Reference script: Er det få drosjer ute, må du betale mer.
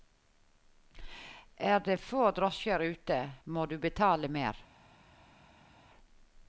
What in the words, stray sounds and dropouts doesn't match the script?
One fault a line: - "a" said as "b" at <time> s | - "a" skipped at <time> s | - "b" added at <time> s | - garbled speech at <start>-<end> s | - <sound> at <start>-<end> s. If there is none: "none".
none